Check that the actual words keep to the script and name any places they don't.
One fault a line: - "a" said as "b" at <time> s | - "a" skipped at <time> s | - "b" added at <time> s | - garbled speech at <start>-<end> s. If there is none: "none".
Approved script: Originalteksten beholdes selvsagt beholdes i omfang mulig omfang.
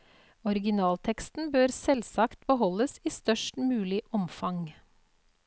- "beholdes" said as "bør" at 1.6 s
- "omfang" said as "størst" at 3.1 s